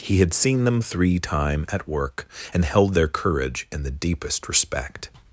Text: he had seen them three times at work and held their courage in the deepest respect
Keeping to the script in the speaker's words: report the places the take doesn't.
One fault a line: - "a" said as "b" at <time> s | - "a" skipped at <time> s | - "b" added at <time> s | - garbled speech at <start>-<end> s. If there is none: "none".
- "times" said as "time" at 1.2 s